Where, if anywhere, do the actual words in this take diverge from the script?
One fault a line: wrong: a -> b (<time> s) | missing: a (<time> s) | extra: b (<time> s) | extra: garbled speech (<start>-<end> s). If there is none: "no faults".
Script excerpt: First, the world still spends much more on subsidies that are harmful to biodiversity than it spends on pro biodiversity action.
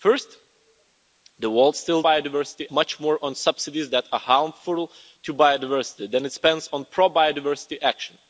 wrong: spends -> biodiversity (2.0 s)